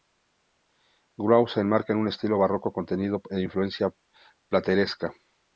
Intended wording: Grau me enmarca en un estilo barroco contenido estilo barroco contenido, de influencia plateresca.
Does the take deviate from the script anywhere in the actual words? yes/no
yes